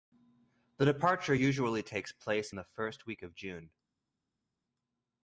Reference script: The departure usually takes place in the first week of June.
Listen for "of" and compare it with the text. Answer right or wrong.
right